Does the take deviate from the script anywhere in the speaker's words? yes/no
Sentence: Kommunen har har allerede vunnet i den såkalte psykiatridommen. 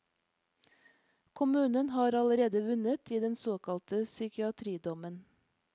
yes